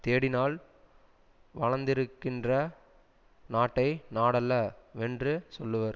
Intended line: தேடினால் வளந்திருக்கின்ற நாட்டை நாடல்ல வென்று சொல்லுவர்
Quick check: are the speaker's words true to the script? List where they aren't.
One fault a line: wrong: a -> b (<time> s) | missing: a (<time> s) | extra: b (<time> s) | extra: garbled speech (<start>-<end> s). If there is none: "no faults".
no faults